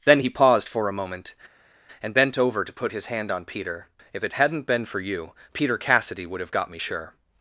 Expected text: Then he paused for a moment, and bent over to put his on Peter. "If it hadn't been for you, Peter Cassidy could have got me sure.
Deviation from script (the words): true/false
true